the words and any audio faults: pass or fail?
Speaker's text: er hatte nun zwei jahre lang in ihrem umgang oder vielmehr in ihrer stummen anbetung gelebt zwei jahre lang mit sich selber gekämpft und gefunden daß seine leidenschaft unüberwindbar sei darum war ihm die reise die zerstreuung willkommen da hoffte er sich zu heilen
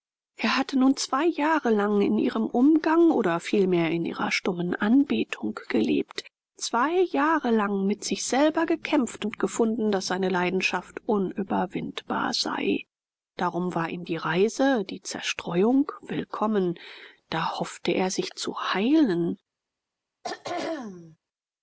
fail